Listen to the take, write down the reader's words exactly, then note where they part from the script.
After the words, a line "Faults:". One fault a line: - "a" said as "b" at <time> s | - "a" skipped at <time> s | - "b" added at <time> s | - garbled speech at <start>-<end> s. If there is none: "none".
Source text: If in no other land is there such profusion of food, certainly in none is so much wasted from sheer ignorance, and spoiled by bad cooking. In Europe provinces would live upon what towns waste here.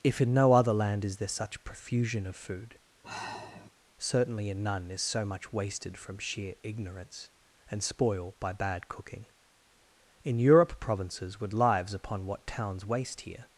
If in no other land is there such profusion of food, certainly in none is so much wasted from sheer ignorance, and spoil by bad cooking. In Europe provinces would lives upon what towns waste here.
Faults:
- "spoiled" said as "spoil" at 7.8 s
- "live" said as "lives" at 11.5 s